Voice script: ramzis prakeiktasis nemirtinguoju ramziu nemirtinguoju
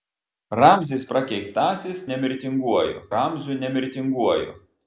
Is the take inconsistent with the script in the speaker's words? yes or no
no